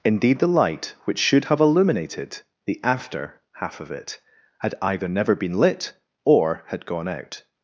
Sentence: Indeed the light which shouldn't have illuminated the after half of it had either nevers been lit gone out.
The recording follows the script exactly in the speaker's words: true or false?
false